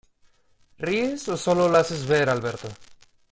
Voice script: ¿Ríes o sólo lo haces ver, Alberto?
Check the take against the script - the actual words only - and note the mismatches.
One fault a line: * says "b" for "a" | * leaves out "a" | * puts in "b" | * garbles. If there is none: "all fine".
all fine